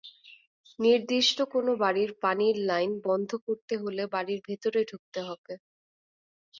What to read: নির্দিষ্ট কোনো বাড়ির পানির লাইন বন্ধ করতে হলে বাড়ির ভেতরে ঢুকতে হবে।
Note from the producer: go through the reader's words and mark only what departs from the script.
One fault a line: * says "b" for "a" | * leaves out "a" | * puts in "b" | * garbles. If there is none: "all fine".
all fine